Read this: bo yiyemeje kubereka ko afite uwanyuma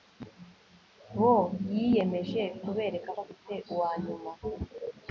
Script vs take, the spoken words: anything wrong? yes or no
no